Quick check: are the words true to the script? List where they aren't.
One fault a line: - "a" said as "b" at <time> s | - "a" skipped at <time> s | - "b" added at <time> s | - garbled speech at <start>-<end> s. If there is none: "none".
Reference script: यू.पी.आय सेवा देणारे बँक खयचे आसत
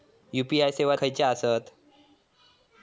- "देणारे बँक" skipped at 0.9 s